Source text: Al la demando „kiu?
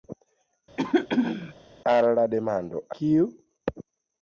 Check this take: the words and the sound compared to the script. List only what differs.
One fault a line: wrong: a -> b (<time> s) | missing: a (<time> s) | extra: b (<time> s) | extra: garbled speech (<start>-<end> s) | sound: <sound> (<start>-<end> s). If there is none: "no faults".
sound: throat clearing (0.8-1.5 s)